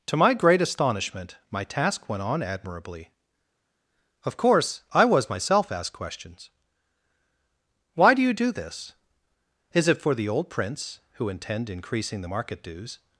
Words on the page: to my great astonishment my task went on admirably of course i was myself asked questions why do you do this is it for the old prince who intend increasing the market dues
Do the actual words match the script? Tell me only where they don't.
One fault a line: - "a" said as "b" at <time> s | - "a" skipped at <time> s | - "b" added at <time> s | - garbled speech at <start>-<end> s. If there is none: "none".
none